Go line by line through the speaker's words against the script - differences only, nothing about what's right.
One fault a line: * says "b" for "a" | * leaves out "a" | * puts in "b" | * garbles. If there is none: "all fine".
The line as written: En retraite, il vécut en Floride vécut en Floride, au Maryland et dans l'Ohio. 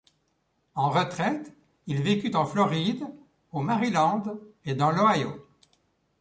* leaves out "vécut en Floride"